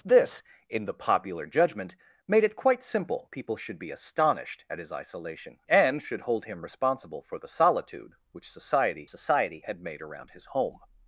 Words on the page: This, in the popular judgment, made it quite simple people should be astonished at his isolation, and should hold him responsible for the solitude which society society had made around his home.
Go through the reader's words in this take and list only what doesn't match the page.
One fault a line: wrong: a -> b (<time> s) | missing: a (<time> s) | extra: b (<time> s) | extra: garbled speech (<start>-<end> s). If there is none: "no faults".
no faults